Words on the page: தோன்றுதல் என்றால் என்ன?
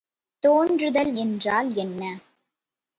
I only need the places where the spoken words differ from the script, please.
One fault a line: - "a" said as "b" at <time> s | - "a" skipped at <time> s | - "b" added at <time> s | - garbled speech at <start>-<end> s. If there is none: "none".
none